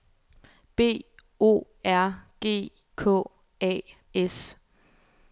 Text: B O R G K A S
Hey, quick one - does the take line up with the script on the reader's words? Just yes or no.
yes